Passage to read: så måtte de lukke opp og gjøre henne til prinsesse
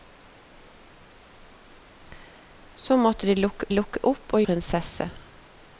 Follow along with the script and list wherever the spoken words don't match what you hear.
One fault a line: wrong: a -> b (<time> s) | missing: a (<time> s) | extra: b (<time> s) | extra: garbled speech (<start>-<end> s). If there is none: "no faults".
extra: lukke (3.7 s)
missing: gjøre henne til (4.4 s)